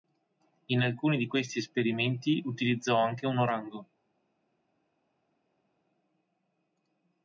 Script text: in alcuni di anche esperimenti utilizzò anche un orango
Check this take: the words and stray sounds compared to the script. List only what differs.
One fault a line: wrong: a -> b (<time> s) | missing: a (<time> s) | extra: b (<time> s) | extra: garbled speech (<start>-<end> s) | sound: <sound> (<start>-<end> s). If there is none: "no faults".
wrong: anche -> questi (1.3 s)